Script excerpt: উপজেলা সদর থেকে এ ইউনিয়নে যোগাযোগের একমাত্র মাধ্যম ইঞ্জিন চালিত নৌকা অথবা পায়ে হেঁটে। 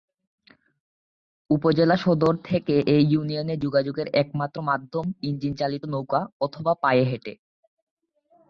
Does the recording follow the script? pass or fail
pass